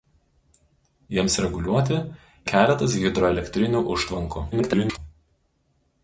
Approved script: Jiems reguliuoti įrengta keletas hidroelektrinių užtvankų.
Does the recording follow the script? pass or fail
fail